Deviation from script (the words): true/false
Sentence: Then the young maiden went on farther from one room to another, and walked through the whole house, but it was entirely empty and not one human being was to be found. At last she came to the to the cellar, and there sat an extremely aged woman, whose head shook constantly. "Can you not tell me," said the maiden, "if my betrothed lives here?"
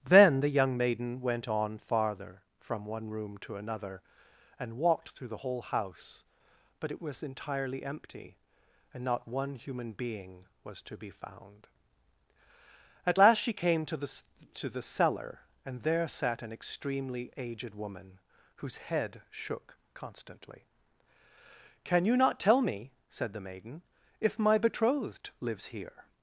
false